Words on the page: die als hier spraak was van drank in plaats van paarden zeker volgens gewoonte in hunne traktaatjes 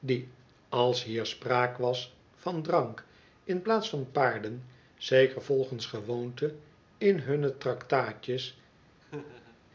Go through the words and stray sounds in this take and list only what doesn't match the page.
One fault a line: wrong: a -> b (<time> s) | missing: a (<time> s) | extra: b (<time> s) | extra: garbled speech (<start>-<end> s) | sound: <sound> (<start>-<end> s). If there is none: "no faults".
sound: laugh (9.0-9.6 s)